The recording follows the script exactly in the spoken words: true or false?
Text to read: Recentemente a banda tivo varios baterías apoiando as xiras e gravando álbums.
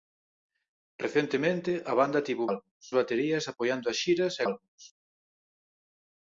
false